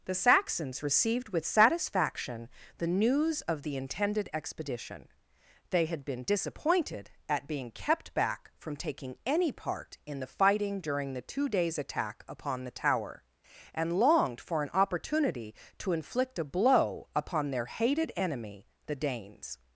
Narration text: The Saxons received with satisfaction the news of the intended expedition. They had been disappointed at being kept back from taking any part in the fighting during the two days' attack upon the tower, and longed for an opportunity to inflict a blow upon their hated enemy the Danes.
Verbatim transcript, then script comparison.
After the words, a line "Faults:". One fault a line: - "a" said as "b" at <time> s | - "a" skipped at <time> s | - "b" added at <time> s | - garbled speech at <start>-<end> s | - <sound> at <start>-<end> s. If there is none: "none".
The Saxons received with satisfaction the news of the intended expedition. They had been disappointed at being kept back from taking any part in the fighting during the two days' attack upon the tower, and longed for an opportunity to inflict a blow upon their hated enemy the Danes.
Faults:
none